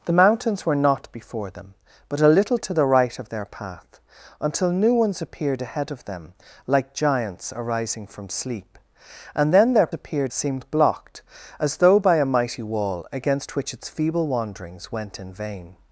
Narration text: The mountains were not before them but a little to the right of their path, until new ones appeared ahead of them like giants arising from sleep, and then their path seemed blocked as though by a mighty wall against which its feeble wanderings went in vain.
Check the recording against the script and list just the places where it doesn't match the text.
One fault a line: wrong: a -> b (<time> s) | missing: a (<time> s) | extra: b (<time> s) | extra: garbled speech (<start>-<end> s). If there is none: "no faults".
wrong: path -> appeared (9.9 s)